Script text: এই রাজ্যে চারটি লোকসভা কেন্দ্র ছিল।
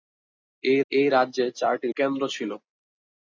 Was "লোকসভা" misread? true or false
true